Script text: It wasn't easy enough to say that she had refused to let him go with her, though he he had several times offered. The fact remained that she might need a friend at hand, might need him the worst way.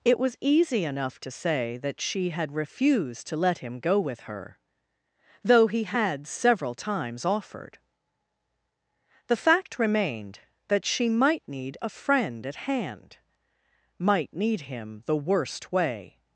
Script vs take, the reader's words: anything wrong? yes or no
yes